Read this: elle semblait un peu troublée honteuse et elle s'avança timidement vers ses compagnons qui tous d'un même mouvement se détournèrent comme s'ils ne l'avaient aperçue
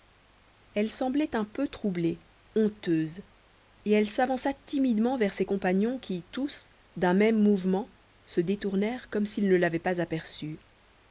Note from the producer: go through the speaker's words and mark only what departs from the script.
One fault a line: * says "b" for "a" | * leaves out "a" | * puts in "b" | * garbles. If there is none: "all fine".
* puts in "pas"